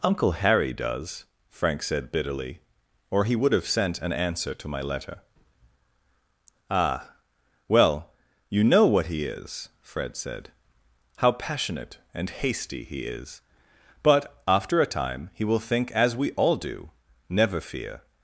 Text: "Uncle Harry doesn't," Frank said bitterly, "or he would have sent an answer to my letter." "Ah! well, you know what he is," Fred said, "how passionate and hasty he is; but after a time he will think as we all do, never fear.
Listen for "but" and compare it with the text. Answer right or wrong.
right